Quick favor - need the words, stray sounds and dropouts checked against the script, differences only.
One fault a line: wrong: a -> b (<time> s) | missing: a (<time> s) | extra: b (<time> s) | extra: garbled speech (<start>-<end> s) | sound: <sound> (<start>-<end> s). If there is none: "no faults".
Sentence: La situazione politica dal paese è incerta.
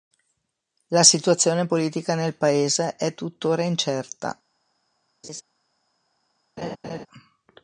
wrong: dal -> nel (2.1 s)
extra: tuttora (3.1 s)
sound: laugh (5.2-5.4 s)
sound: laugh (6.6-7.1 s)